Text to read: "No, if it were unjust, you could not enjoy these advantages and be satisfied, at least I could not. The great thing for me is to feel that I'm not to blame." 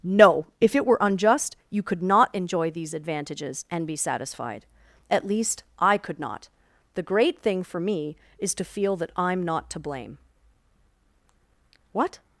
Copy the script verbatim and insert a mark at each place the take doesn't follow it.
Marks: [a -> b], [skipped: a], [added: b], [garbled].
"No, if it were unjust, you could not enjoy these advantages and be satisfied, at least I could not. The great thing for me is to feel that I'm not to blame." [added: What]